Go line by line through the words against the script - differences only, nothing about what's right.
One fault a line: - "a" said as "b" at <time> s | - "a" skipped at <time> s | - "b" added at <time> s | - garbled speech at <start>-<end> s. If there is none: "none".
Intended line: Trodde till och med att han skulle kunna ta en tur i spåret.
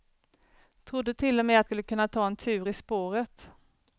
- "han" skipped at 1.7 s